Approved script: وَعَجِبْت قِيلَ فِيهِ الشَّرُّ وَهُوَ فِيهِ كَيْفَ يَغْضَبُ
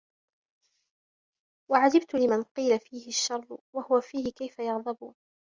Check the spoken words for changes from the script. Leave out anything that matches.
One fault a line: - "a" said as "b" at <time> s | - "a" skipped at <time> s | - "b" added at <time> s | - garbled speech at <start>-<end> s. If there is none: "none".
- "لِمَنْ" added at 2.1 s